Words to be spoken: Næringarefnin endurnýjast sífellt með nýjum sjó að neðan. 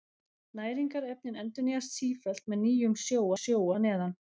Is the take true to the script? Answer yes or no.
no